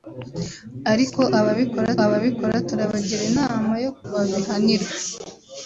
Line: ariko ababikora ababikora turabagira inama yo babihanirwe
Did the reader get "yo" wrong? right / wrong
right